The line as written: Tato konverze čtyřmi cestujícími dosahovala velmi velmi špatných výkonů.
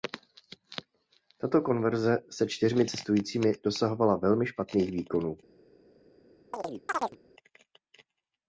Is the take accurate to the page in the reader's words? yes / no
no